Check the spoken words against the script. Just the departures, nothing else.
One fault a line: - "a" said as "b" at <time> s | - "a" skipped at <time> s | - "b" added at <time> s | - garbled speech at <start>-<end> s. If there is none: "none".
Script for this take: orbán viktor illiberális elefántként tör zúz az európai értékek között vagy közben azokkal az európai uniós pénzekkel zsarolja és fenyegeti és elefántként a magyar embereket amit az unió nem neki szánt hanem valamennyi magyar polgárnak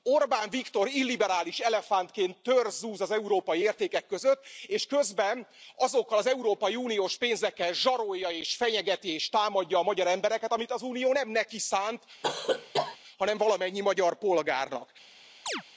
- "vagy" said as "és" at 4.7 s
- "elefántként" said as "támadja" at 9.3 s